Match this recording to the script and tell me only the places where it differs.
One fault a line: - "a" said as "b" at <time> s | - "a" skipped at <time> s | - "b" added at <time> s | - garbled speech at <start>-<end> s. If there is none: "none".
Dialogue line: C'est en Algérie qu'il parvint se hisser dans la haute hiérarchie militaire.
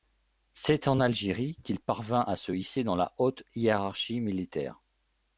- "à" added at 2.2 s